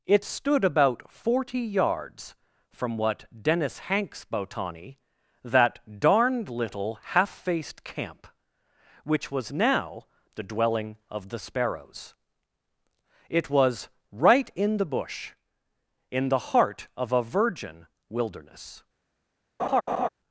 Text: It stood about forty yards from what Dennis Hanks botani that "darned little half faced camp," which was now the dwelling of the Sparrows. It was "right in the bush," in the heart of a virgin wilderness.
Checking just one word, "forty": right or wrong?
right